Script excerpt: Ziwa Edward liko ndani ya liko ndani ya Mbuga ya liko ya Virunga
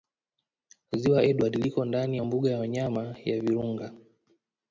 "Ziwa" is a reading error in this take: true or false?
false